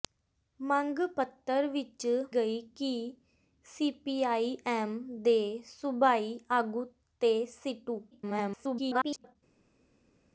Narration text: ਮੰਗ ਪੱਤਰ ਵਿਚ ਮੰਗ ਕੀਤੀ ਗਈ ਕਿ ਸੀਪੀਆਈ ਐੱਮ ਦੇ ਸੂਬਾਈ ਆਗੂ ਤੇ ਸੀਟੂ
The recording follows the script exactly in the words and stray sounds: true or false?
false